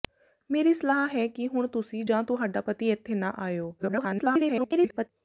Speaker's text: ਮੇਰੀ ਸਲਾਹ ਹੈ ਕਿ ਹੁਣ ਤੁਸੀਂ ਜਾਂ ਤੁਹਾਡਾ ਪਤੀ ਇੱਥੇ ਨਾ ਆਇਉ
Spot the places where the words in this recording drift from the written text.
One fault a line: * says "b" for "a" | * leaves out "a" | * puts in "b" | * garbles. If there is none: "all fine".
* garbles